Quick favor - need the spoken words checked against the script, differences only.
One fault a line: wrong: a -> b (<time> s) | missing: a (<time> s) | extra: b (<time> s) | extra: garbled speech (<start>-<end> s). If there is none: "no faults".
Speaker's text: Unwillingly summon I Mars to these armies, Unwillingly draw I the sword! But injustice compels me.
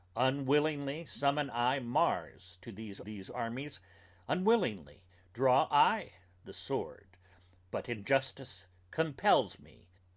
extra: these (3.0 s)